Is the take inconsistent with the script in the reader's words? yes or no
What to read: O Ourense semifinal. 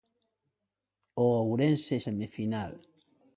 no